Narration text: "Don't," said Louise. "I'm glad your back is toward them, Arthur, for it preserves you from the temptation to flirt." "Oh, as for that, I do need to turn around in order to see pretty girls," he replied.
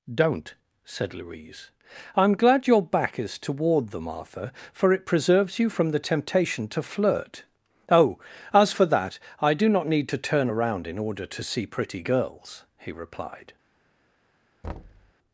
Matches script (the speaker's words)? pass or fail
fail